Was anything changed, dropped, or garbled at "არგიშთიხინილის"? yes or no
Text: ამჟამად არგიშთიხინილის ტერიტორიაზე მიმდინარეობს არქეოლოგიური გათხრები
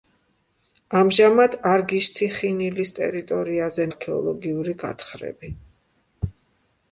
no